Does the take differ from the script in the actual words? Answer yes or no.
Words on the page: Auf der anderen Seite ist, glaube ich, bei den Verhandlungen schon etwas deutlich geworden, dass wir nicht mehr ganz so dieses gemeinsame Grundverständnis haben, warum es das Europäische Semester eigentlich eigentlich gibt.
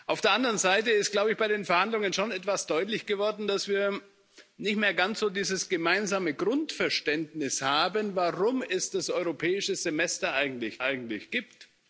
no